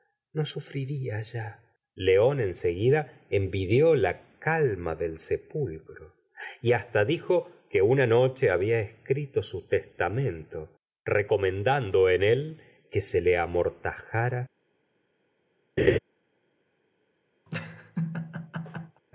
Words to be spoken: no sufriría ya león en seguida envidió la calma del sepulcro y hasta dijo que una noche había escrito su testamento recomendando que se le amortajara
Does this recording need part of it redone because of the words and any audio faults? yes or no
yes